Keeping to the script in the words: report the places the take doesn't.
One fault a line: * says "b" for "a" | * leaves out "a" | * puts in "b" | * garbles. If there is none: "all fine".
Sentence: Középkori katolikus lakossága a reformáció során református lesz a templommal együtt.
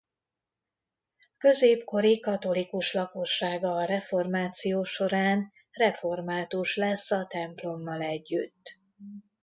all fine